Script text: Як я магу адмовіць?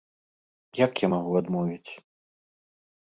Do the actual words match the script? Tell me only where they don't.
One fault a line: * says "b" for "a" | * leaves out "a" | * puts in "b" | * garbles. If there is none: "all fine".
all fine